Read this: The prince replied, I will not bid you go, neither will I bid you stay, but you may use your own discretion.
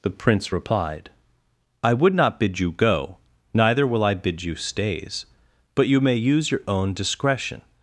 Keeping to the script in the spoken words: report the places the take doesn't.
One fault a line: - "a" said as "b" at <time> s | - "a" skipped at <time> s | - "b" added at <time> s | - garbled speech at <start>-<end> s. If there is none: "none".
- "will" said as "would" at 1.9 s
- "stay" said as "stays" at 4.5 s